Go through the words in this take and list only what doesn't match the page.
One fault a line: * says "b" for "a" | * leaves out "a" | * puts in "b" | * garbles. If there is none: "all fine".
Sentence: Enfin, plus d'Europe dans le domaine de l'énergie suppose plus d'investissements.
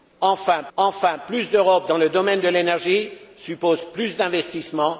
* puts in "enfin"